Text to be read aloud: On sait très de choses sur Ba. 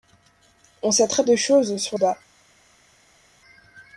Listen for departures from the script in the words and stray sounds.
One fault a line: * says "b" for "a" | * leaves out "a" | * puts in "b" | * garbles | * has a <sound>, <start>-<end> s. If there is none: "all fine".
all fine